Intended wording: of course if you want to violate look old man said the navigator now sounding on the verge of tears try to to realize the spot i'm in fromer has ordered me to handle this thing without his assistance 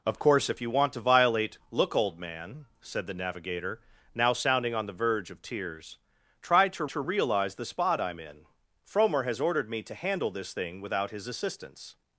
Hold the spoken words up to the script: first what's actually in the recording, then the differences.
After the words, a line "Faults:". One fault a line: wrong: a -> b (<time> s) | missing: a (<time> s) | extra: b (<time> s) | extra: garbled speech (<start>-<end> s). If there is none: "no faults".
of course if you want to violate look old man said the navigator now sounding on the verge of tears try to to realize the spot i'm in fromer has ordered me to handle this thing without his assistance
Faults:
no faults